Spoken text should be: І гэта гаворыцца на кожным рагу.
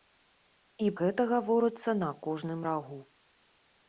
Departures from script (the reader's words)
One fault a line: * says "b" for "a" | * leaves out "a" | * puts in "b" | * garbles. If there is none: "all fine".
all fine